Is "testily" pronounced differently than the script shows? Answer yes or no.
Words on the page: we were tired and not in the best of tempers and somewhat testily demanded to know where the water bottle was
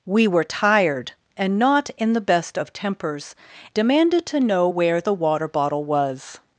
yes